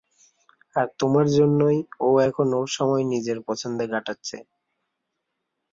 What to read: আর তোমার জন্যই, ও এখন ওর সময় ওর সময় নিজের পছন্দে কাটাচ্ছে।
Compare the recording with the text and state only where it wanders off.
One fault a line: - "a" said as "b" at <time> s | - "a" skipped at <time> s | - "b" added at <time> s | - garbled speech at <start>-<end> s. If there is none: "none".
- "ওর সময়" skipped at 3.0 s